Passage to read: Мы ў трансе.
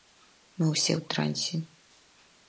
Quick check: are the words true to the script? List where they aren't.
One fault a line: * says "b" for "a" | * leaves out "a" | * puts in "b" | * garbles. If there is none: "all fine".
* puts in "ўсе"